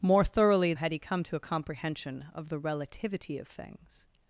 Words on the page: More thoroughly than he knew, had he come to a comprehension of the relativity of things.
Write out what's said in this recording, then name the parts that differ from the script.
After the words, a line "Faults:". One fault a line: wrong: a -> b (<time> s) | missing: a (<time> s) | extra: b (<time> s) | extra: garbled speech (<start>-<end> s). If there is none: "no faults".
More thoroughly had he come to a comprehension of the relativity of things.
Faults:
missing: than he knew (0.7 s)